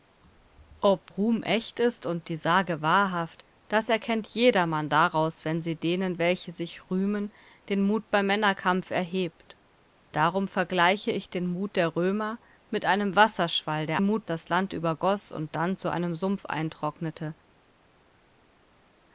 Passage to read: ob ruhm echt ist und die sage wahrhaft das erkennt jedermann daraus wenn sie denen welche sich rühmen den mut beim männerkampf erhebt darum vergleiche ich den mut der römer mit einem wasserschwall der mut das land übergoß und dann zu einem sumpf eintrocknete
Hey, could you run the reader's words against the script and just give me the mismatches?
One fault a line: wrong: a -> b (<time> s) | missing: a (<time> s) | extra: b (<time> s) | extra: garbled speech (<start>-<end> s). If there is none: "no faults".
no faults